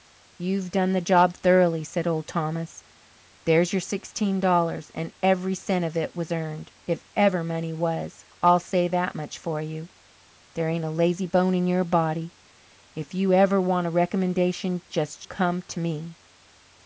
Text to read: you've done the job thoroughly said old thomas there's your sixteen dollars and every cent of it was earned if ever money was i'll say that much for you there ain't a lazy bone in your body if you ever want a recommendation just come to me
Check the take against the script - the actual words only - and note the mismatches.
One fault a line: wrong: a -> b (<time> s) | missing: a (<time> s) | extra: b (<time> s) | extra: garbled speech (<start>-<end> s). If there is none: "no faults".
no faults